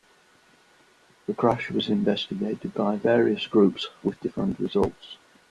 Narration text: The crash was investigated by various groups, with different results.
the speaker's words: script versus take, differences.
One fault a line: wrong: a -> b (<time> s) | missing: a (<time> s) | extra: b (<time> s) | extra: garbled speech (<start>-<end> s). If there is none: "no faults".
no faults